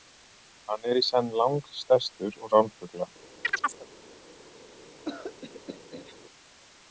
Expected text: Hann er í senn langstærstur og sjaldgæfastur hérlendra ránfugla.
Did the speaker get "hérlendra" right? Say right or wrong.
wrong